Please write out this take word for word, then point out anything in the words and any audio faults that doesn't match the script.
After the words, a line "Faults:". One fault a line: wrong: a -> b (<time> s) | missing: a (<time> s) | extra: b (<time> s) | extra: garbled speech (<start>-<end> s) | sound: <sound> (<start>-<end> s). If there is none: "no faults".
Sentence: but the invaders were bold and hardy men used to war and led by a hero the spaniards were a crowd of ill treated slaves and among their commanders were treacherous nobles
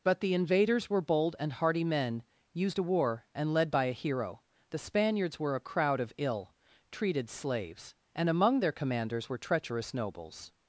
but the invaders were bold and hardy men used to war and led by a hero the spaniards were a crowd of ill treated slaves and among their commanders were treacherous nobles
Faults:
no faults